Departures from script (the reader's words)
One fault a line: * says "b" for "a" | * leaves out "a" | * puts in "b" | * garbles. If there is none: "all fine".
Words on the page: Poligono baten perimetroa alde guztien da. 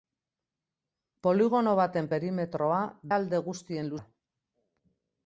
all fine